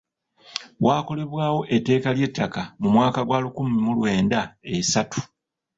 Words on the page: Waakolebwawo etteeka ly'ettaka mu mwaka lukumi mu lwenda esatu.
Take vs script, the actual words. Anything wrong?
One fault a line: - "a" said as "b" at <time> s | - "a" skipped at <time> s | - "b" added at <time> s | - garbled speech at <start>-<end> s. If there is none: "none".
- "gwa" added at 3.3 s